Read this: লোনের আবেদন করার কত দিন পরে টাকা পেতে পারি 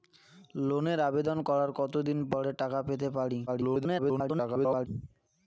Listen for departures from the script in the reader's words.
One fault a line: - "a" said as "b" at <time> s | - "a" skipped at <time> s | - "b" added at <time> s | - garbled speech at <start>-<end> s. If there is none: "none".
- garbled speech at 3.5-4.9 s